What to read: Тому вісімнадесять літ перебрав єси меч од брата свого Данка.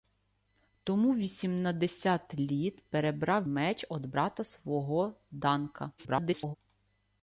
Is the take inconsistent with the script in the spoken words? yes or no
yes